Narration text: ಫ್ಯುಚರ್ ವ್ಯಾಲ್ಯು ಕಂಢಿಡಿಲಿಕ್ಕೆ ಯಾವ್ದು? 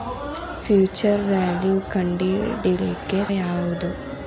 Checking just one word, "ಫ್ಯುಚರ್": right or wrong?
right